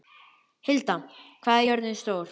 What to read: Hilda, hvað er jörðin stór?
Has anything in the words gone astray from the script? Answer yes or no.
no